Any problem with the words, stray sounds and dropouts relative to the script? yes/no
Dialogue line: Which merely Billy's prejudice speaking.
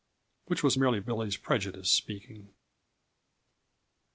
yes